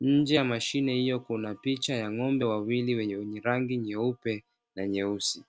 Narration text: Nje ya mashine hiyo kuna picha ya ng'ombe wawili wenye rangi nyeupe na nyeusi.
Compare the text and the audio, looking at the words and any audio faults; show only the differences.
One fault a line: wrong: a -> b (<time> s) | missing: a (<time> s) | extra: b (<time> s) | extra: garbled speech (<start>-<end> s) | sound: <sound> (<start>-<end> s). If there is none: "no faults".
no faults